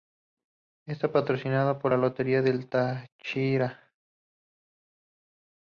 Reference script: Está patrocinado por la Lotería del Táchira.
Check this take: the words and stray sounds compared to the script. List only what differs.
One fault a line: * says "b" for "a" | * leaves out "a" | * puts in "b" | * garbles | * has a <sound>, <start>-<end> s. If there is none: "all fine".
all fine